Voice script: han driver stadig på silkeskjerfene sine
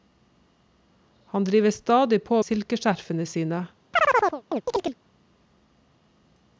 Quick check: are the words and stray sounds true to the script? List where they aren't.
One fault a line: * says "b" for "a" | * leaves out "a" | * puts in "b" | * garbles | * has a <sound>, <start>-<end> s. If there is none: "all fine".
* has a chirp, 3.9-5.0 s